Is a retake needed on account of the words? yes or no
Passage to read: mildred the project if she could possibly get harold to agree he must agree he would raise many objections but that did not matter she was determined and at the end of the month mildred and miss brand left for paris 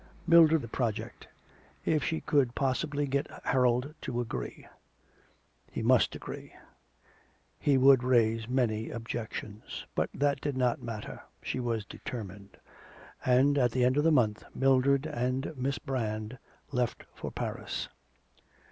no